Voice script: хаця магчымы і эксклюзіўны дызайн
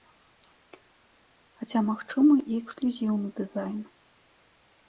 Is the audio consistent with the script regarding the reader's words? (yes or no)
yes